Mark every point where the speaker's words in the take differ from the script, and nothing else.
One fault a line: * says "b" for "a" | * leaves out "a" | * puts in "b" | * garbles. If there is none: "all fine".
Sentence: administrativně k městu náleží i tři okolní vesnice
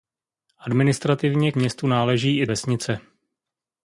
* leaves out "k"
* leaves out "tři okolní"